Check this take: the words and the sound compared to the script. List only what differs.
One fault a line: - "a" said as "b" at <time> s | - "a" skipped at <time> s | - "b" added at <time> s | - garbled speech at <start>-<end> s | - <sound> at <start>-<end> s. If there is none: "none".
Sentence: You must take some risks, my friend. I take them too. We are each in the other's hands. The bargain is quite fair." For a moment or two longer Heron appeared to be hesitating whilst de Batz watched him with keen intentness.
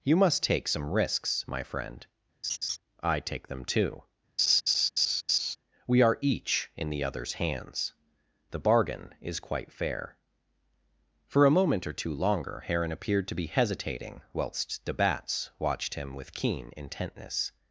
- laugh at 2.4-2.8 s
- laugh at 4.4-5.6 s